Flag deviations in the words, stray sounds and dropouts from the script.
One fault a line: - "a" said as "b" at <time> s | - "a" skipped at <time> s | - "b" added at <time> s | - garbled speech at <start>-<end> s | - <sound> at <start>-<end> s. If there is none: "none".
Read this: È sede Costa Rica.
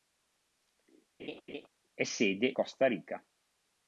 - laugh at 1.2-1.7 s